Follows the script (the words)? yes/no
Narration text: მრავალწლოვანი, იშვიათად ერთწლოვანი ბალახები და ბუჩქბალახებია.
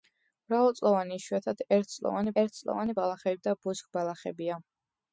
no